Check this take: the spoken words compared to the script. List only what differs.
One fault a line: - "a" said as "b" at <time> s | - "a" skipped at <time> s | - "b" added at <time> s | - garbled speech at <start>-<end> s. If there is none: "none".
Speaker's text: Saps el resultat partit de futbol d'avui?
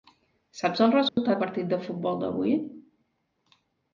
none